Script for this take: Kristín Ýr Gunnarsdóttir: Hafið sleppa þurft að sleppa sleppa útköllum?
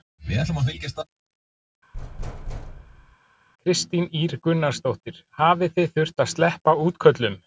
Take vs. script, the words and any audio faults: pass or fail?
fail